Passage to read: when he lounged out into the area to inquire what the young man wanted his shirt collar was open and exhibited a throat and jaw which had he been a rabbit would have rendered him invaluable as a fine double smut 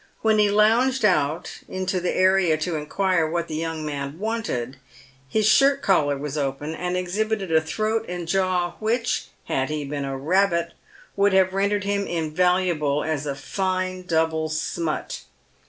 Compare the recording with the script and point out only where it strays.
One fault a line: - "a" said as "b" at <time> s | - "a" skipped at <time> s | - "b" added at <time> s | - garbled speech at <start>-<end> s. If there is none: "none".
none